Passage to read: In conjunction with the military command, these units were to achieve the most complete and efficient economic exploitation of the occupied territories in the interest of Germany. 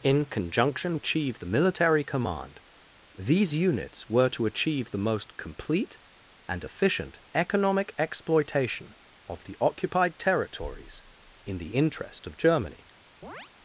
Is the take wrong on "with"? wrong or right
wrong